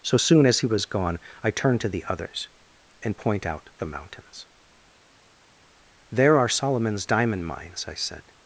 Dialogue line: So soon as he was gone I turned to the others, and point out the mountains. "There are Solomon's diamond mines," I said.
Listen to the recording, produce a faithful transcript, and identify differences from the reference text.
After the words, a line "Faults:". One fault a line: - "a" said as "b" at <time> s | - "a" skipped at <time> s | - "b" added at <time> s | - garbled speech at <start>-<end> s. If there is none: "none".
So soon as he was gone I turned to the others, and point out the mountains. "There are Solomon's diamond mines," I said.
Faults:
none